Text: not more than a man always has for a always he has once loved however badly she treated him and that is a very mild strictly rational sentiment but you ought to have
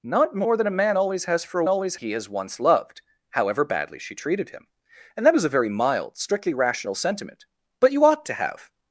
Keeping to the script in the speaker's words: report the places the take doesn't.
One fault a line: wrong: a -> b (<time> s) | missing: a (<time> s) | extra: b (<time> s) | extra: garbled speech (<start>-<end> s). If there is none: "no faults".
no faults